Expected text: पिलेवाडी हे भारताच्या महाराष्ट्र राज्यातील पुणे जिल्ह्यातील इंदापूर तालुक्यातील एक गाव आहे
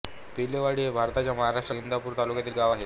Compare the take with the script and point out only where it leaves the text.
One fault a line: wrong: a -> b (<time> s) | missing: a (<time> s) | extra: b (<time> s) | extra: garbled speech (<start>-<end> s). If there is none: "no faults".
missing: राज्यातील पुणे जिल्ह्यातील (1.8 s)
missing: एक (2.6 s)